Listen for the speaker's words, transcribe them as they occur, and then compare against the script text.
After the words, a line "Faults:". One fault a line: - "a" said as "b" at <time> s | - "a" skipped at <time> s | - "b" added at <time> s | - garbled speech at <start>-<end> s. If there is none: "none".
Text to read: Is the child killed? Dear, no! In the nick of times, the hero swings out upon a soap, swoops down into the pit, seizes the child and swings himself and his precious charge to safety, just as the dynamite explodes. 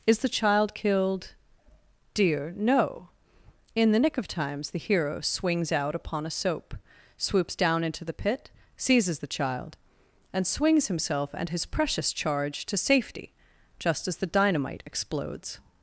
Is the child killed? Dear, no! In the nick of times, the hero swings out upon a soap, swoops down into the pit, seizes the child and swings himself and his precious charge to safety, just as the dynamite explodes.
Faults:
none